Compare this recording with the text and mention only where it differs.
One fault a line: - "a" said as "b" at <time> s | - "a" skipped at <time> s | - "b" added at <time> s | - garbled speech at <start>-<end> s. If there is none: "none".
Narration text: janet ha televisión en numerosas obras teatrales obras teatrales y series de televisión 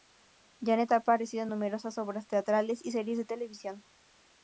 - "televisión" said as "aparecido" at 0.9 s
- "obras teatrales" skipped at 2.8 s